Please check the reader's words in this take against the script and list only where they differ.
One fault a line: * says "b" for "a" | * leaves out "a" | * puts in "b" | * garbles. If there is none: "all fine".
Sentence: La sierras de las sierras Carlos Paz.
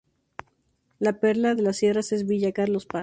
* says "perla" for "sierras"
* puts in "es Villa"